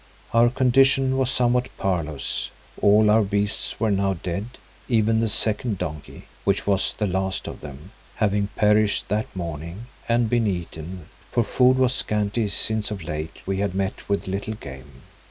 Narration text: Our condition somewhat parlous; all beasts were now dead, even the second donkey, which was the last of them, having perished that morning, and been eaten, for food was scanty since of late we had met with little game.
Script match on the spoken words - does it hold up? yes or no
no